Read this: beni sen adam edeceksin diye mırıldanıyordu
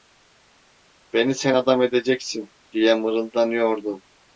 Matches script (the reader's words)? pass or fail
pass